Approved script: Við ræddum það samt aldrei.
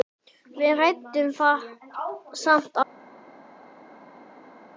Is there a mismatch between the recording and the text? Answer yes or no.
no